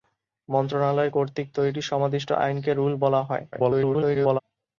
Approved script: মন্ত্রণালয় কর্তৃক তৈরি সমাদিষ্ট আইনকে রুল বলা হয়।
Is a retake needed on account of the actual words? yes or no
yes